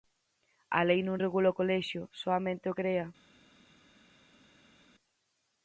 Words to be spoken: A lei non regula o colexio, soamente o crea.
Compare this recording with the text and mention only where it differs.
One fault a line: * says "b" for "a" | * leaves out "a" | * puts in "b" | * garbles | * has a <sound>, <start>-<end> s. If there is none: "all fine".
all fine